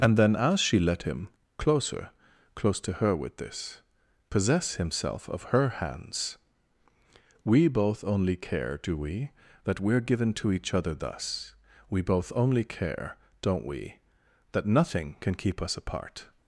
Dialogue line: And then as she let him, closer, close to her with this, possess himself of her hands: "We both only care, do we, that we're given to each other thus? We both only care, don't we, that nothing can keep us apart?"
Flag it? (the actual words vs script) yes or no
no